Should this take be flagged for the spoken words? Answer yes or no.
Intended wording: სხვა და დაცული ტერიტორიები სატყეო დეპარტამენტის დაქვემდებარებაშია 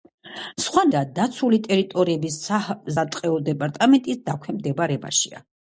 no